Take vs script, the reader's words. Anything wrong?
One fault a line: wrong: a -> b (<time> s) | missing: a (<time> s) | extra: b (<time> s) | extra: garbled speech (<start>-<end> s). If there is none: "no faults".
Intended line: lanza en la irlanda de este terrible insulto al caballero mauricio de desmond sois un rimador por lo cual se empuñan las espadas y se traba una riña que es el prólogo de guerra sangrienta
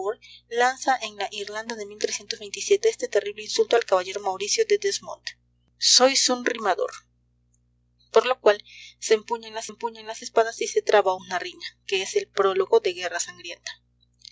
extra: empuñan las (9.7 s)